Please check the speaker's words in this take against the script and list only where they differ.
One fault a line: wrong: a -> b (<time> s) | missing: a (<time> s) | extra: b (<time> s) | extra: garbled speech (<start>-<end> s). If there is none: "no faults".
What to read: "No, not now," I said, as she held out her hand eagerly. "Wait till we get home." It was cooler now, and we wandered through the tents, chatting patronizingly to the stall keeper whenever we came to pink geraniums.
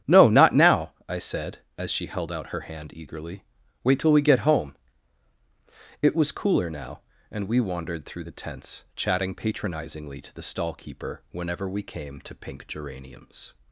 no faults